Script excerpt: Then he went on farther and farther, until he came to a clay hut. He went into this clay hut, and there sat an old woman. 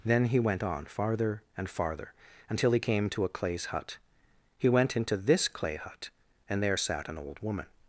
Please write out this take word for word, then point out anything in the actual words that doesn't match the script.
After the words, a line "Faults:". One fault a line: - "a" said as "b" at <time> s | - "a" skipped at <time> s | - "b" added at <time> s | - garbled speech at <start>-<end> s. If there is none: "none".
Then he went on farther and farther, until he came to a clays hut. He went into this clay hut, and there sat an old woman.
Faults:
- "clay" said as "clays" at 3.3 s